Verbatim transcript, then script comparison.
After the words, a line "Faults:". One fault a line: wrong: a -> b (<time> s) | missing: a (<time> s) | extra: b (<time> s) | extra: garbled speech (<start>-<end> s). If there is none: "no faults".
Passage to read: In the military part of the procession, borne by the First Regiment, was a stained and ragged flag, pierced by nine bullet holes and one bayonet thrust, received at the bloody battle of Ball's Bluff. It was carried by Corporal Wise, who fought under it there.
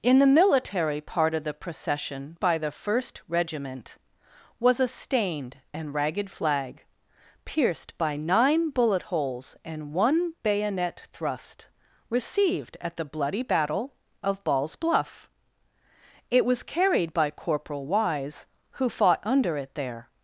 In the military part of the procession, by the First Regiment, was a stained and ragged flag, pierced by nine bullet holes and one bayonet thrust, received at the bloody battle of Ball's Bluff. It was carried by Corporal Wise, who fought under it there.
Faults:
missing: borne (2.4 s)